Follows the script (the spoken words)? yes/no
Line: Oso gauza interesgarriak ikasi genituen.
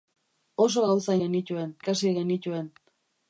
no